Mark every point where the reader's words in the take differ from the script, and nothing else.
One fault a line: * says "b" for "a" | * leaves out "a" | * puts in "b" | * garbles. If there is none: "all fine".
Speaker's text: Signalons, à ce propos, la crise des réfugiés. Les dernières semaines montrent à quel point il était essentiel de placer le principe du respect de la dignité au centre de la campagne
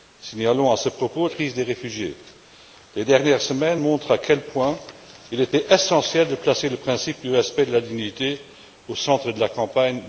* leaves out "la"